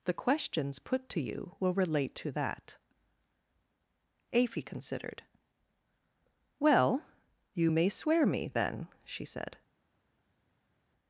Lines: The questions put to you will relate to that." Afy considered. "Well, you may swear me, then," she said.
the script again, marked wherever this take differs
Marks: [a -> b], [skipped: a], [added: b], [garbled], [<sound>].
The questions put to you will relate to that." Afy considered. "Well, you may swear me, then," she said.